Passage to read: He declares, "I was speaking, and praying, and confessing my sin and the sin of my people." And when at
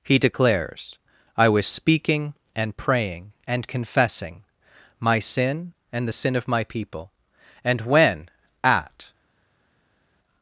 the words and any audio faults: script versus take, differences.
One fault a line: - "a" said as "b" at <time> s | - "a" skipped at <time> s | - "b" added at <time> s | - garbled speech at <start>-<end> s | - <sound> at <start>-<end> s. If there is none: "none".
none